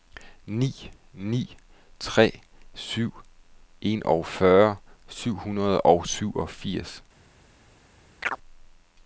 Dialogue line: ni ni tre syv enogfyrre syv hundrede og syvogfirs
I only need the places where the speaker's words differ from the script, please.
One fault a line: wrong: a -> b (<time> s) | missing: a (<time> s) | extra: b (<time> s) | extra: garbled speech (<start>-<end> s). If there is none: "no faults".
no faults